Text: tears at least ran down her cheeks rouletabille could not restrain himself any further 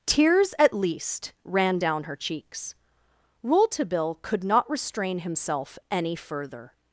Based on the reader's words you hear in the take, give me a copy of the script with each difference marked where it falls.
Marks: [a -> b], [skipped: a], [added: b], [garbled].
tears at least ran down her cheeks rouletabille could not restrain himself any further